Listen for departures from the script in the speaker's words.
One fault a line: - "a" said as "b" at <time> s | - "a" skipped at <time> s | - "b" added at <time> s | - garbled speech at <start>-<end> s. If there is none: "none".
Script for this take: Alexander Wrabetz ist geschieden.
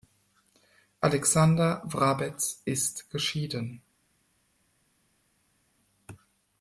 none